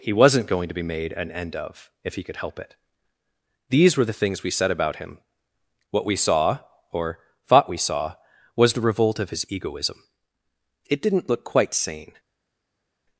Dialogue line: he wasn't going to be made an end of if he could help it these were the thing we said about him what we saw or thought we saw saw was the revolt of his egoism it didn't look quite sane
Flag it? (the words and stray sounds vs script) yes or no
yes